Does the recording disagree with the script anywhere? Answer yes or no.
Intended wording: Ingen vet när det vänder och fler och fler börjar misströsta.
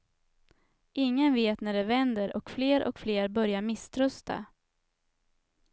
no